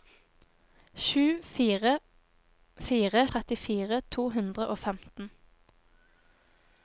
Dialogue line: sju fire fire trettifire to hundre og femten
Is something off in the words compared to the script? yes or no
no